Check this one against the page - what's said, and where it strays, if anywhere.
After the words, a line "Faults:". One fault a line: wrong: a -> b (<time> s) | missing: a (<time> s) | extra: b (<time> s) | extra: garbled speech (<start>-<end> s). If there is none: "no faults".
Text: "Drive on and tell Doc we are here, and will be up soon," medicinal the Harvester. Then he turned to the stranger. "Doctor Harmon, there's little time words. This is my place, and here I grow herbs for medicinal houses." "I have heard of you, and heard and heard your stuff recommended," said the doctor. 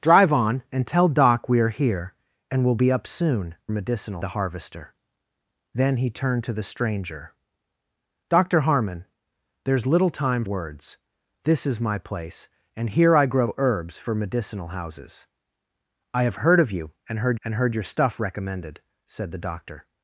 "Drive on and tell Doc we are here, and will be up soon," medicinal the Harvester. Then he turned to the stranger. "Doctor Harmon, there's little time words. This is my place, and here I grow herbs for medicinal houses." "I have heard of you, and heard and heard your stuff recommended," said the doctor.
Faults:
no faults